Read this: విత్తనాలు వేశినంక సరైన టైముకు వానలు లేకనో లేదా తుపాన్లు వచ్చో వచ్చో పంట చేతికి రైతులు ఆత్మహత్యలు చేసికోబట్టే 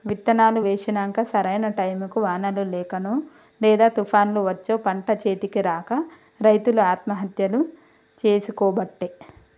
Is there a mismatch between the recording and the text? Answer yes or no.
yes